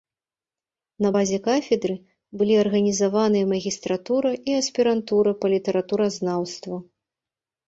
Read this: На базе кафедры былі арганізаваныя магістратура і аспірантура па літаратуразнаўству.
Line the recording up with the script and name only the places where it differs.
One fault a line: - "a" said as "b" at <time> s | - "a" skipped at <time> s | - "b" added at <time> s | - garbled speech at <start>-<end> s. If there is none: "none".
none